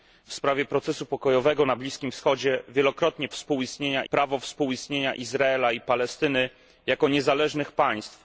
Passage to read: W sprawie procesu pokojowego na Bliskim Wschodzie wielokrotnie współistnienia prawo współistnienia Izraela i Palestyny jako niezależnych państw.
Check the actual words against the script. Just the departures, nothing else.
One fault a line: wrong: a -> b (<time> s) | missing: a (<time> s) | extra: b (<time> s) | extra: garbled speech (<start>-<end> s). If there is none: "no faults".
no faults